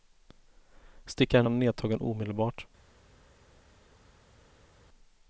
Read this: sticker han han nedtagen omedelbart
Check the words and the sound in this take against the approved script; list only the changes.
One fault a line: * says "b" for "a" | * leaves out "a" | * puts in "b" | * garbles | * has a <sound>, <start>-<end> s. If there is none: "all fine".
all fine